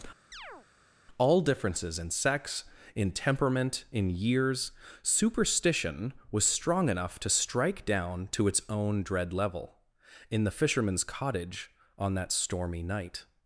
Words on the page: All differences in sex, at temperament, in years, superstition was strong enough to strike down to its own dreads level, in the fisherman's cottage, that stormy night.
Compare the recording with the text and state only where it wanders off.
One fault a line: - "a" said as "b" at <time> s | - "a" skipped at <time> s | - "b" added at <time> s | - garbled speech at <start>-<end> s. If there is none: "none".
- "at" said as "in" at 2.9 s
- "dreads" said as "dread" at 9.0 s
- "on" added at 12.0 s